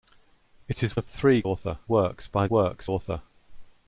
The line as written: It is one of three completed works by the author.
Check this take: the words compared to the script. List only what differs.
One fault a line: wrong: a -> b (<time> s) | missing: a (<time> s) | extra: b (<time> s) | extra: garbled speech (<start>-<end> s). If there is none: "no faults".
missing: one (1.0 s)
wrong: completed -> author (1.4 s)
wrong: the -> works (2.5 s)